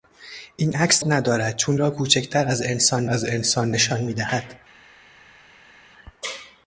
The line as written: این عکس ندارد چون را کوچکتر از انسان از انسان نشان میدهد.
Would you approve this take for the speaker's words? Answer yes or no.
yes